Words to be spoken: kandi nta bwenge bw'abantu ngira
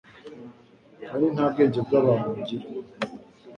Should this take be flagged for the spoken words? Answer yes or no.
no